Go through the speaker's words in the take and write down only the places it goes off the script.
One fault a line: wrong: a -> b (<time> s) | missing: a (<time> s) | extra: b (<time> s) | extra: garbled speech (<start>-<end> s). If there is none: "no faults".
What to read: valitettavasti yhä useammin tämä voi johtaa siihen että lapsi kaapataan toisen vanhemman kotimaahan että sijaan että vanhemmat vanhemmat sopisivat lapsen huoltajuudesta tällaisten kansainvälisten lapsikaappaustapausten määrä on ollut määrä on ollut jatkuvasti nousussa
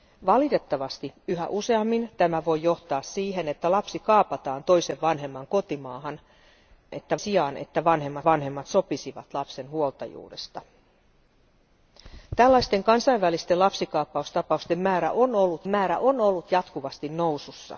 no faults